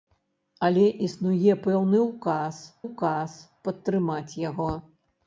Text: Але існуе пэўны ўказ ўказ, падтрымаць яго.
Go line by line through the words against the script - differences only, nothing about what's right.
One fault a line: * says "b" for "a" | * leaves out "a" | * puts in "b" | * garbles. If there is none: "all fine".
all fine